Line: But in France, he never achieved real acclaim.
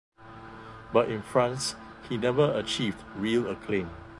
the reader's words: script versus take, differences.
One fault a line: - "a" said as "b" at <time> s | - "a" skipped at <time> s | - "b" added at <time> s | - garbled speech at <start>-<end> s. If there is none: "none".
none